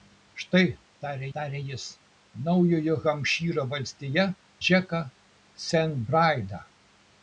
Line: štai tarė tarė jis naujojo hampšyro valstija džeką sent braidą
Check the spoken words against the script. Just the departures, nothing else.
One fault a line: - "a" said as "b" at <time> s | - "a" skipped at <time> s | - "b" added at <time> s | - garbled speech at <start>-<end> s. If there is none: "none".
none